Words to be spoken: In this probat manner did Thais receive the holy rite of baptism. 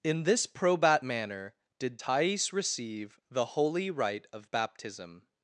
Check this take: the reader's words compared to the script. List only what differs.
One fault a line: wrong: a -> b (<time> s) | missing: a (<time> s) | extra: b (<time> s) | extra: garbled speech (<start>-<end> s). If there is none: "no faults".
no faults